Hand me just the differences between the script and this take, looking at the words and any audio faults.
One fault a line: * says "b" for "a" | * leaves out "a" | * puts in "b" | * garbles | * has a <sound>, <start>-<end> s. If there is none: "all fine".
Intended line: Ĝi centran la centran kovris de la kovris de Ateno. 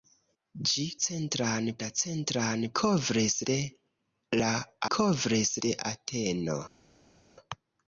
all fine